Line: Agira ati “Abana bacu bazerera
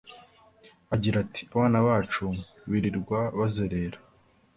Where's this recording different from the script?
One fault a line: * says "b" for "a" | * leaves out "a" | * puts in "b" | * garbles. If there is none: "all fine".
* puts in "birirwa"